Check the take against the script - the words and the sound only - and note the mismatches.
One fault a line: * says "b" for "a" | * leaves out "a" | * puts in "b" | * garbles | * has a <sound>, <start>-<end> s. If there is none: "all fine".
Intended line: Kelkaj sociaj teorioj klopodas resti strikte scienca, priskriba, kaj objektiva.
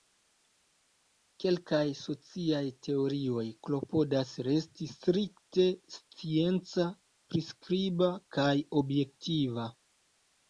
all fine